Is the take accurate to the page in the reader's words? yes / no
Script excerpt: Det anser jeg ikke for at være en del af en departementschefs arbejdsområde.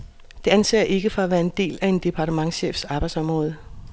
yes